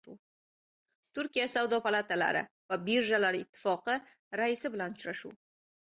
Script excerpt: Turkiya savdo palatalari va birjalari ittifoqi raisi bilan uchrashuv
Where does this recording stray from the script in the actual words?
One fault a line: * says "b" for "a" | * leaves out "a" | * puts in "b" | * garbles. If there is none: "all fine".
all fine